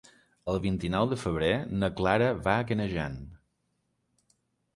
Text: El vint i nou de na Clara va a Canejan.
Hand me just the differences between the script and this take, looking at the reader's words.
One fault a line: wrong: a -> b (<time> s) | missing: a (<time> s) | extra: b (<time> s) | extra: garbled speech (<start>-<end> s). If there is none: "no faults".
extra: febrer (1.2 s)